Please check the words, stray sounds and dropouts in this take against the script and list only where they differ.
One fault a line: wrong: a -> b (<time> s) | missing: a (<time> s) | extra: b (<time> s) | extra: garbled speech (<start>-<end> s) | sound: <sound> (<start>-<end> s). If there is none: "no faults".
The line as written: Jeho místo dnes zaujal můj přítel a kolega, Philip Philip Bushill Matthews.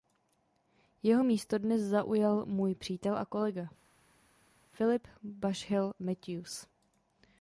missing: Philip (5.1 s)